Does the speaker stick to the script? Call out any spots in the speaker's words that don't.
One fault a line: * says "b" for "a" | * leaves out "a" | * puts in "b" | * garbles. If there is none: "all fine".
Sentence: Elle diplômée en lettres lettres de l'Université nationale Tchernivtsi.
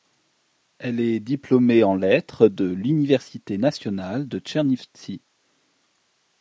* puts in "est"
* leaves out "lettres"
* puts in "de"